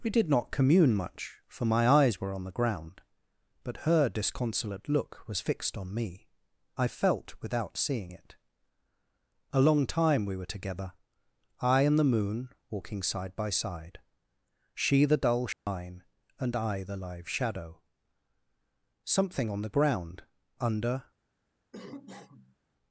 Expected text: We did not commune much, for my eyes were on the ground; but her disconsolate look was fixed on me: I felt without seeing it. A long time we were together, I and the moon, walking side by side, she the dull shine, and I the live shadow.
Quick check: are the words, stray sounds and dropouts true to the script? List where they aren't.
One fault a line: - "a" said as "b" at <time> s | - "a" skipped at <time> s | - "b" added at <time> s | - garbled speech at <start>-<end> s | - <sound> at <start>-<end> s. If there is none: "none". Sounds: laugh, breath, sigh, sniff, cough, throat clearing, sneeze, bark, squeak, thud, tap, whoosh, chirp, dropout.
- dropout at 15.5-15.7 s
- "Something on the ground under" added at 19.0 s
- cough at 21.7-22.6 s